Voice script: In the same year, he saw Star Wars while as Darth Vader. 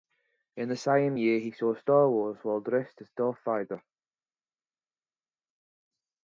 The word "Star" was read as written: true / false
true